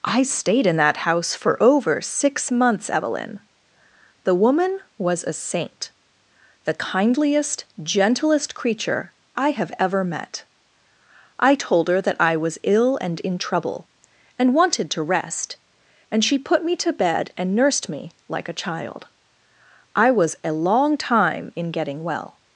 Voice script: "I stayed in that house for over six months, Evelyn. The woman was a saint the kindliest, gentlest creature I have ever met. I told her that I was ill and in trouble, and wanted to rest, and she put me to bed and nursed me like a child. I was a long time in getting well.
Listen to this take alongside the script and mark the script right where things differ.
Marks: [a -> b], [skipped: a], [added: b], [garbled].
"I stayed in that house for over six months, Evelyn. The woman was a saint the kindliest, gentlest creature I have ever met. I told her that I was ill and in trouble, and wanted to rest, and she put me to bed and nursed me like a child. I was a long time in getting well.